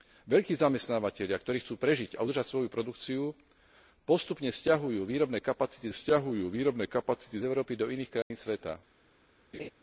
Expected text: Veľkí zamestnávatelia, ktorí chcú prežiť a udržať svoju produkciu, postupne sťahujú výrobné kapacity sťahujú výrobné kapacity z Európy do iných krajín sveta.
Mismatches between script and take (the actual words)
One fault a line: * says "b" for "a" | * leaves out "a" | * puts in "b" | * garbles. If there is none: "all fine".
all fine